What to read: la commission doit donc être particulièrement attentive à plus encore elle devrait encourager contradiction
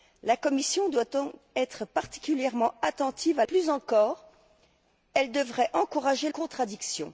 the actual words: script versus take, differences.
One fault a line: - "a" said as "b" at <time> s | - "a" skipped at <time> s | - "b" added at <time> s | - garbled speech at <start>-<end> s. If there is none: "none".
none